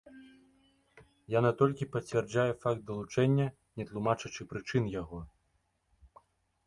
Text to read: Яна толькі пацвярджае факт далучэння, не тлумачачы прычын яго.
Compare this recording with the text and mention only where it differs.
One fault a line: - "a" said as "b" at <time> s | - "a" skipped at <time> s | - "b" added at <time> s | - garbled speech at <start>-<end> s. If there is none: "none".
none